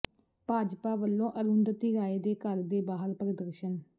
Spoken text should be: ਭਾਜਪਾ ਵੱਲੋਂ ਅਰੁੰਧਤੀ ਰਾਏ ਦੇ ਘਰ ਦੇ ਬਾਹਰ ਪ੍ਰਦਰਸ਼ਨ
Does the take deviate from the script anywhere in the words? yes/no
no